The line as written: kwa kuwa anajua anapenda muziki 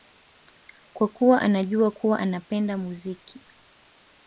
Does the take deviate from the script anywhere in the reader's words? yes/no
yes